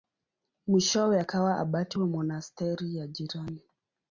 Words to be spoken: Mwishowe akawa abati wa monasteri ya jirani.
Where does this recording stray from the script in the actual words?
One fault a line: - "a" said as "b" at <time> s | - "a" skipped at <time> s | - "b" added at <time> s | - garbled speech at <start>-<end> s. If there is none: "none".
none